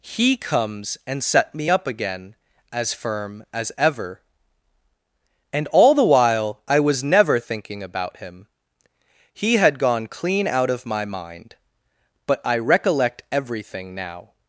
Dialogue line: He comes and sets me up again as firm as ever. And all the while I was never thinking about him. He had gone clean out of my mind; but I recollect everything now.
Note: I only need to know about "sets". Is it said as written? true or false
false